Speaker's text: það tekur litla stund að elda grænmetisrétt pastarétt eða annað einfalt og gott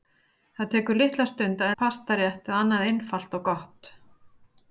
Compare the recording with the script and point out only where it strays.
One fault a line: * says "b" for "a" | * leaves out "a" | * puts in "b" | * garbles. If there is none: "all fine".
* leaves out "elda grænmetisrétt"